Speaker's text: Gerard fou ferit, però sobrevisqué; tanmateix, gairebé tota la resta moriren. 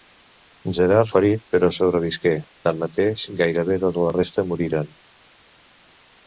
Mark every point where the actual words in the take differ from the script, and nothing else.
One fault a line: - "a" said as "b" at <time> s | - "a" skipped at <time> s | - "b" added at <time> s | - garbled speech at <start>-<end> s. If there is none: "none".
- "fou" skipped at 1.1 s